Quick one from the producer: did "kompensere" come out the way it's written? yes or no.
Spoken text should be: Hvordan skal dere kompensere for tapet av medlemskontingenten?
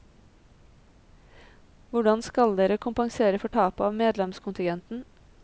yes